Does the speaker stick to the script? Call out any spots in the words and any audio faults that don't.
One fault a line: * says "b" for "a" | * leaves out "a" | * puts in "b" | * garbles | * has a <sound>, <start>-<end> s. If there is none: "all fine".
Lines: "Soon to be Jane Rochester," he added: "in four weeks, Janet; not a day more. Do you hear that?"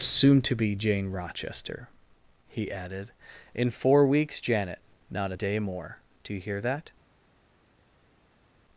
all fine